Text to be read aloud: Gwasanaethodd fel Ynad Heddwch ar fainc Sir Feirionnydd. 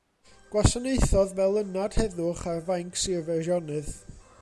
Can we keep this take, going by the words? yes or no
yes